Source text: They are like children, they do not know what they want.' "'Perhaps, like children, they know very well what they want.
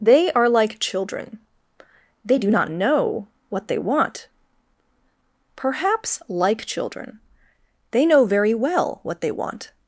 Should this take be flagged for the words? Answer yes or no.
no